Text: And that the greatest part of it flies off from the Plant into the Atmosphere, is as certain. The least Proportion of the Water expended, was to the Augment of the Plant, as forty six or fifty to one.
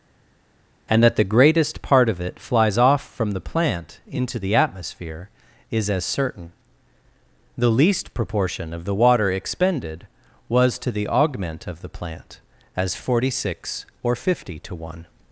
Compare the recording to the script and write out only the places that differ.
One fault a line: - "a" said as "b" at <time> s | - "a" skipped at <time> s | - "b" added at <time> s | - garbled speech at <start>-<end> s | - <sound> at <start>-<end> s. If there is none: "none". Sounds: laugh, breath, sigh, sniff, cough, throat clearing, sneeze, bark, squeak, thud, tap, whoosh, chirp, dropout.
none